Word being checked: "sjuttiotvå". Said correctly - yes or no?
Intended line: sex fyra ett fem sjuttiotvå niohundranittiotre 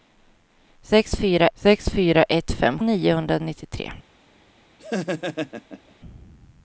no